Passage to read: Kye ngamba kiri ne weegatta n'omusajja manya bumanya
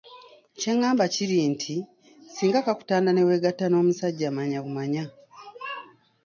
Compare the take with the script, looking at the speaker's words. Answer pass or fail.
fail